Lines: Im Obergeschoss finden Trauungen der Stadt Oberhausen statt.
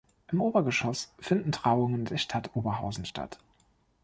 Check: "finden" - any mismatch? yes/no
no